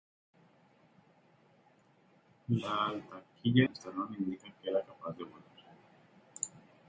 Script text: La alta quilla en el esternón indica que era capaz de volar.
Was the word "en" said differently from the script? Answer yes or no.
yes